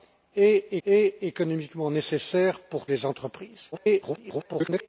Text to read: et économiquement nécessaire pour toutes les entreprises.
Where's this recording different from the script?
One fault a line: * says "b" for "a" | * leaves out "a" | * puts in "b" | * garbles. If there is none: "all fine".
* puts in "et"
* leaves out "toutes"
* garbles